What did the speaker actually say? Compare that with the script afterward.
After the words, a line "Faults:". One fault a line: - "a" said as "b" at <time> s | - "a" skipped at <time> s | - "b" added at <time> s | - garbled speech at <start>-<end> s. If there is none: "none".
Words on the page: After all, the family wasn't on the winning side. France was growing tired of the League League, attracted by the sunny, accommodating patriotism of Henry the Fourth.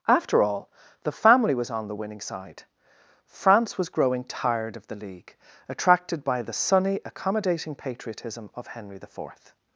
After all, the family was on the winning side. France was growing tired of the League, attracted by the sunny, accommodating patriotism of Henry the Fourth.
Faults:
- "wasn't" said as "was" at 1.5 s
- "League" skipped at 5.4 s